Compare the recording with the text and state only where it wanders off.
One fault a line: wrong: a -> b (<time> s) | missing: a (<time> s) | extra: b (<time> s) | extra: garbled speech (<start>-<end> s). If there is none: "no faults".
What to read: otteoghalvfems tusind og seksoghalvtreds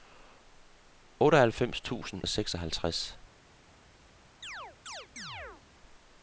no faults